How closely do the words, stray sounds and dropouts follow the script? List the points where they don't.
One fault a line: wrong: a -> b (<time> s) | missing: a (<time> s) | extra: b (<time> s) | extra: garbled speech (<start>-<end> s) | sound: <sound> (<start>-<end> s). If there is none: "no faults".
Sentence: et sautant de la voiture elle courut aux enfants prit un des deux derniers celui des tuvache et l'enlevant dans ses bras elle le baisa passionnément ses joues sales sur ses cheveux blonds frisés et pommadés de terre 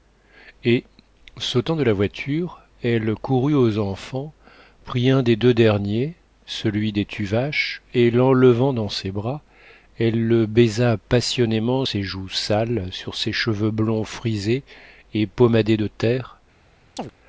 sound: chirp (17.0-17.1 s)